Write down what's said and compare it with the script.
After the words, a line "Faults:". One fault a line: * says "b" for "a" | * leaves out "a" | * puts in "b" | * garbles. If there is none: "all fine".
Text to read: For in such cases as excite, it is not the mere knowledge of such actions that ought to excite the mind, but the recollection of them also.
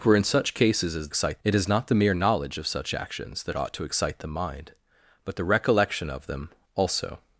For in such cases as excite, it is not the mere knowledge of such actions that ought to excite the mind, but the recollection of them also.
Faults:
all fine